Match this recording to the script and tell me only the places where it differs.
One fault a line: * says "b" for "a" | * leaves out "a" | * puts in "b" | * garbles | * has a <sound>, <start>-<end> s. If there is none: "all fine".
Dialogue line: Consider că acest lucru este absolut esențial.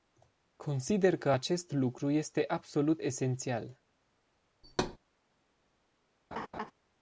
* has a thud, 4.6-5.0 s
* has a laugh, 6.3-6.7 s